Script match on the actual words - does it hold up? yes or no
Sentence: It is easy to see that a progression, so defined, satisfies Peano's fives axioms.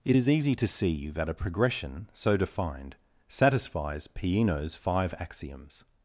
no